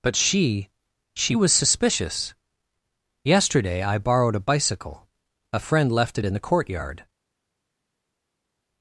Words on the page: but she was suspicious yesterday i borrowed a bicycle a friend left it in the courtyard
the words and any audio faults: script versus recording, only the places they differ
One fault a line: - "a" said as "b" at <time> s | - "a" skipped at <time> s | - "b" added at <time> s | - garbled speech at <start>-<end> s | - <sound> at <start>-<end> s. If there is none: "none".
- "she" added at 1.1 s